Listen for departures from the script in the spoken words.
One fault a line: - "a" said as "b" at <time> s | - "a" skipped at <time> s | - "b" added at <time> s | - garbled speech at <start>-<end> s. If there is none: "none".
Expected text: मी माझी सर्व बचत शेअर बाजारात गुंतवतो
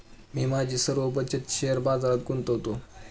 none